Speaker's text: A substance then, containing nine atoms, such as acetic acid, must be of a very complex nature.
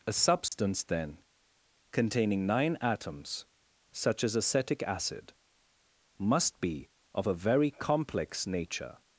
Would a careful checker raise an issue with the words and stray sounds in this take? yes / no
yes